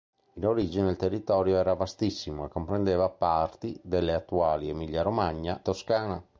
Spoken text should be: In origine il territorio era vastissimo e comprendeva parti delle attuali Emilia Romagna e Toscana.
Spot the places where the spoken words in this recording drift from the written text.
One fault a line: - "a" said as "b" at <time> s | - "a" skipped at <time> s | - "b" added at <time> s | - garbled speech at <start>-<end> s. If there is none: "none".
- "e" skipped at 5.6 s